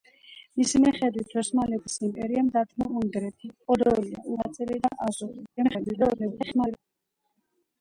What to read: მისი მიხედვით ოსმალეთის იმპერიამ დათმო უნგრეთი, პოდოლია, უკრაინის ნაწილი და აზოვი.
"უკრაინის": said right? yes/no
no